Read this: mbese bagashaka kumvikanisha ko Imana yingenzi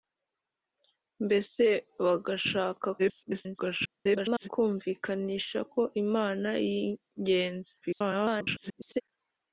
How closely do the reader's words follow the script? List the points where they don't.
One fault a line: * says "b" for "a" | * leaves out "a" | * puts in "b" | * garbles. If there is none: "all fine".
* garbles
* garbles